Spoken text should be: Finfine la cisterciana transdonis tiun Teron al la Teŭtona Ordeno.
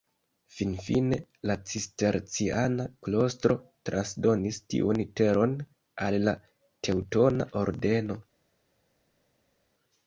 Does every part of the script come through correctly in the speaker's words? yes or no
no